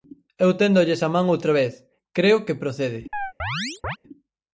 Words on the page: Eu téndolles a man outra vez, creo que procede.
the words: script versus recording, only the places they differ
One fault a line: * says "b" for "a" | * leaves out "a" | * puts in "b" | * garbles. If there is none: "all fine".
all fine